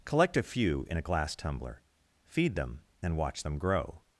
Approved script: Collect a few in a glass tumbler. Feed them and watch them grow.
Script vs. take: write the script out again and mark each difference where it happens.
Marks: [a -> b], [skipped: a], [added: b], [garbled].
Collect a few in a glass tumbler. Feed them and watch them grow.